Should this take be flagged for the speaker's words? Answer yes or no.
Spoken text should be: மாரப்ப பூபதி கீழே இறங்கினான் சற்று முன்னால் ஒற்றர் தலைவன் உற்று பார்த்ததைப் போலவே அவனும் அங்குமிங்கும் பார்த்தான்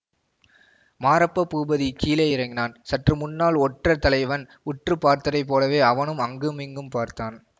no